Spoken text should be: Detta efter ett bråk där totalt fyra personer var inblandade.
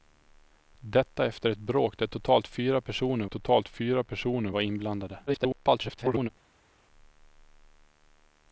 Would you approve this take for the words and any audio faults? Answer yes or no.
no